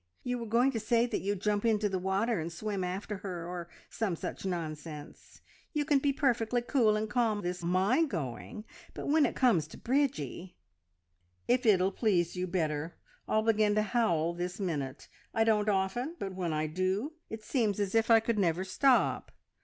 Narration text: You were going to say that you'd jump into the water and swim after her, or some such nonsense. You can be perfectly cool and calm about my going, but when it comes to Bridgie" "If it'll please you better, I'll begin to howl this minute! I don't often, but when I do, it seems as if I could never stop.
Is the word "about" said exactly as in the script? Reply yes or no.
no